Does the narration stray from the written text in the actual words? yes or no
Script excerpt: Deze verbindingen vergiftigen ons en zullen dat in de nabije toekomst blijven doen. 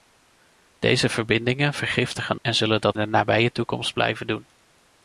yes